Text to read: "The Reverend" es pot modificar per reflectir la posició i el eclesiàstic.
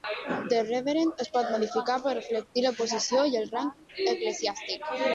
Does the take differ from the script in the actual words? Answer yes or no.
yes